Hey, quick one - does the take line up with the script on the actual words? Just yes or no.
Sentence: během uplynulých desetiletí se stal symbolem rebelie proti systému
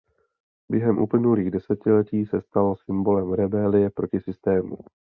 yes